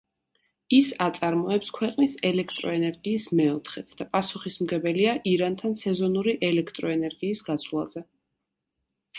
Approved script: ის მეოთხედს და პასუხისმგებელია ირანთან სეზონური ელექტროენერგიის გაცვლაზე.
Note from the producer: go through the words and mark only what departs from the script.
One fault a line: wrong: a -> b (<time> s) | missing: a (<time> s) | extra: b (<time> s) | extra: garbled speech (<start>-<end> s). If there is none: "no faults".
extra: აწარმოებს ქვეყნის ელექტროენერგიის (1.1 s)